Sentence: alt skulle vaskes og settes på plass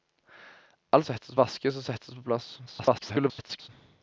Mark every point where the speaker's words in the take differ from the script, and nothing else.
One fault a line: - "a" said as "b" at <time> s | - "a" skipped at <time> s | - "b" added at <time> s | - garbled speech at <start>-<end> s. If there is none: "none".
- "skulle" said as "settes" at 1.1 s
- garbled speech at 2.7-3.7 s